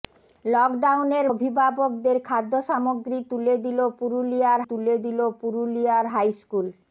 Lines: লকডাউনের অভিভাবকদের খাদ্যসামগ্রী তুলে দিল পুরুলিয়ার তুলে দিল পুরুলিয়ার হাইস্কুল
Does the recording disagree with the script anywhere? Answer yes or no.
no